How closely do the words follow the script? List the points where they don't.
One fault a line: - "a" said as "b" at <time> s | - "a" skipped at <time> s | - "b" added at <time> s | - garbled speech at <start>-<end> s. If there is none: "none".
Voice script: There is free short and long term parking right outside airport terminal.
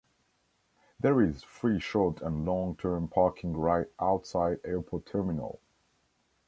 none